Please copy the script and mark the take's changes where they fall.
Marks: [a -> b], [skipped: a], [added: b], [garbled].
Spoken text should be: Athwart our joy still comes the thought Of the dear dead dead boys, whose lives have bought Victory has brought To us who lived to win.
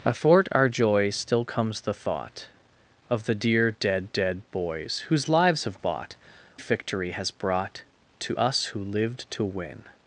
Athwart our joy still comes the thought Of the dear dead dead boys, whose lives have bought Victory has brought To us who lived to win.